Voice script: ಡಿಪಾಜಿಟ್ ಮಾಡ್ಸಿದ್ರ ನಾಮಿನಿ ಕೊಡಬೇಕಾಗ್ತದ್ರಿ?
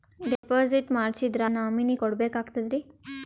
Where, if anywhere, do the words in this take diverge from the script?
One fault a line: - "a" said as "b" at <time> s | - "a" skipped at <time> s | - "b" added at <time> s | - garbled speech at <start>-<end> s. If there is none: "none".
none